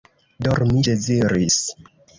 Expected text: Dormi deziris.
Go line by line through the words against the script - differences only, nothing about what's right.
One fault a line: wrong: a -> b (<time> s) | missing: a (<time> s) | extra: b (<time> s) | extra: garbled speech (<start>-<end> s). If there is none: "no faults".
no faults